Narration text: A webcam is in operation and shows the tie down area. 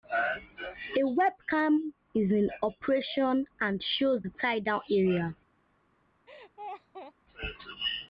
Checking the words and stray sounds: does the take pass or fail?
fail